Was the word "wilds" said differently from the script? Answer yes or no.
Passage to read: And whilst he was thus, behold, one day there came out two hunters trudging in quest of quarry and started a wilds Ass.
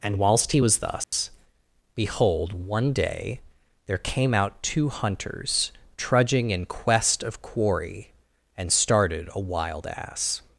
yes